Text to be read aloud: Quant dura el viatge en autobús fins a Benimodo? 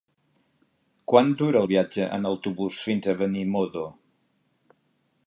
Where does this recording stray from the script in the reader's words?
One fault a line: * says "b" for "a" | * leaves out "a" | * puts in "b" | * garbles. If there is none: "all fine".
all fine